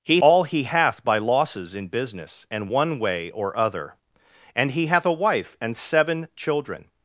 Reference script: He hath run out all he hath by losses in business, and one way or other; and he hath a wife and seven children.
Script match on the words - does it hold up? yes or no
no